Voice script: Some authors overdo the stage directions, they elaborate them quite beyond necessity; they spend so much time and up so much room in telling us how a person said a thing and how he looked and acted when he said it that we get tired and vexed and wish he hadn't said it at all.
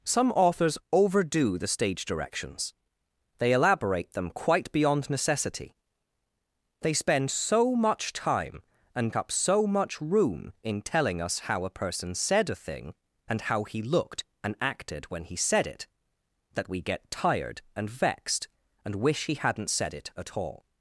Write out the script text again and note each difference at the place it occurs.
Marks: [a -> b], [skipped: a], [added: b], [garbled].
Some authors overdo the stage directions, they elaborate them quite beyond necessity; they spend so much time and up so much room in telling us how a person said a thing and how he looked and acted when he said it that we get tired and vexed and wish he hadn't said it at all.